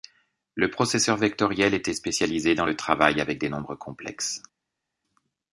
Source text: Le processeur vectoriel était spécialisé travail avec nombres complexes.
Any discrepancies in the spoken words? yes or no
yes